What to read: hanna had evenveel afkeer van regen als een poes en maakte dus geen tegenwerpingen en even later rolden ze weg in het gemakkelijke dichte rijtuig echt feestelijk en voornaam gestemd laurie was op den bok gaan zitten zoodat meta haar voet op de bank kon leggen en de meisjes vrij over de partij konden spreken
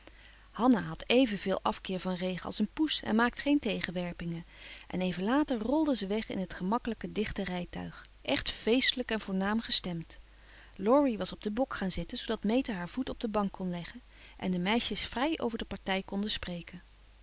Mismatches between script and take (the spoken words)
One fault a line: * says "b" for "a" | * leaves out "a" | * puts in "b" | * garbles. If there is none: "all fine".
* leaves out "dus"